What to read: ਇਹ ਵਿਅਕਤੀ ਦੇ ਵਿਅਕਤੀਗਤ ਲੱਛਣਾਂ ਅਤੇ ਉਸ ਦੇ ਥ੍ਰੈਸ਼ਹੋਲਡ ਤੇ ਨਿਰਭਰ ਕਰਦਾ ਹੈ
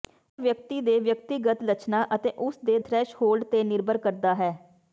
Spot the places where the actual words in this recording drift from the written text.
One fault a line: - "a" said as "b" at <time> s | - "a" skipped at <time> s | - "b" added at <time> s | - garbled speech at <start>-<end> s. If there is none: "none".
none